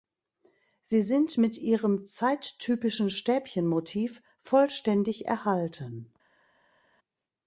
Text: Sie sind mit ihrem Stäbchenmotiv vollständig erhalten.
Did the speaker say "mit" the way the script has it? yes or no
yes